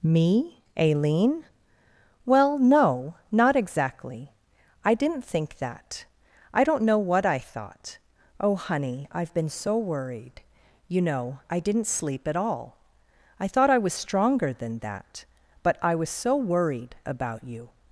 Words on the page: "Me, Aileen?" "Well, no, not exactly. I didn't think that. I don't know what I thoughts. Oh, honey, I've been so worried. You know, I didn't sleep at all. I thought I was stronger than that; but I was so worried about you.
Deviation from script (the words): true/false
true